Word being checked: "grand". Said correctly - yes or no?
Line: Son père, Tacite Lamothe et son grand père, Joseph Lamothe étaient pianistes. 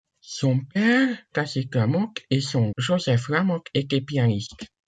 no